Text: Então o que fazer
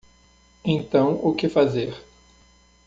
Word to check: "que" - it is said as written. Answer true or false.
true